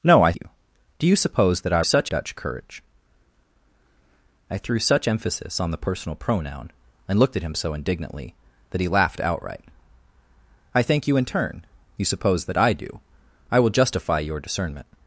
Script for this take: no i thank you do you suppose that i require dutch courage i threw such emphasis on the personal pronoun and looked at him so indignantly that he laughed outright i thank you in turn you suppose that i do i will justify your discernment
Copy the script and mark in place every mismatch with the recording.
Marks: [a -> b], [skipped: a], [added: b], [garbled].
no i [skipped: thank] you do you suppose that i [require -> such] dutch courage i threw such emphasis on the personal pronoun and looked at him so indignantly that he laughed outright i thank you in turn you suppose that i do i will justify your discernment